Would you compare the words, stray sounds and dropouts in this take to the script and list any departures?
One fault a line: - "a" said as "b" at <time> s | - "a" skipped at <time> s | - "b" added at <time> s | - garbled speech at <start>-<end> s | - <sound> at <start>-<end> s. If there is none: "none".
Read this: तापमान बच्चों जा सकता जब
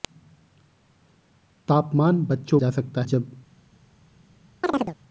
- chirp at 4.6-5.0 s